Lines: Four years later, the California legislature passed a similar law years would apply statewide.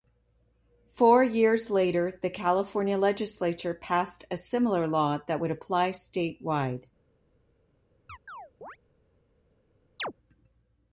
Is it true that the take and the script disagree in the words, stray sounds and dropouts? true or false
true